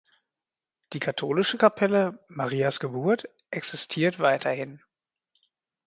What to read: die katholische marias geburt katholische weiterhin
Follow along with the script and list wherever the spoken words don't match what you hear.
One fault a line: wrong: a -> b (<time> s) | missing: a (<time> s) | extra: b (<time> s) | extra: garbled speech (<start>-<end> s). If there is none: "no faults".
extra: kapelle (1.5 s)
wrong: katholische -> existiert (3.5 s)